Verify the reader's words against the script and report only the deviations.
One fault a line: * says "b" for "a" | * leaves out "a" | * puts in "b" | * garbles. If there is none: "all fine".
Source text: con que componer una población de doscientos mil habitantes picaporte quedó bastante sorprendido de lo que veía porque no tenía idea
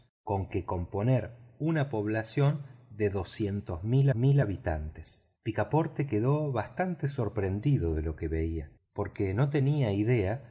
* puts in "mil"